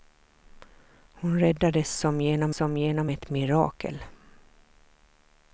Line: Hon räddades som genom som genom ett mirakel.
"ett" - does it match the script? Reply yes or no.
yes